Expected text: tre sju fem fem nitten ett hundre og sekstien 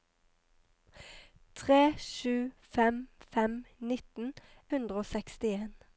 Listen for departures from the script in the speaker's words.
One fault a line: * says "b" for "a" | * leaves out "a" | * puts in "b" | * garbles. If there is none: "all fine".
* leaves out "ett"